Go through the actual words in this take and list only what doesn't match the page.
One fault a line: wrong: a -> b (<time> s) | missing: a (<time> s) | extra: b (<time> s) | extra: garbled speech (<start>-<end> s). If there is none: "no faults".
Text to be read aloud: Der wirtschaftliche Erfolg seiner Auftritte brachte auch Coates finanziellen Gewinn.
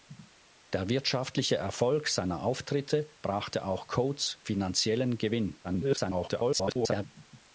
extra: garbled speech (5.6-7.1 s)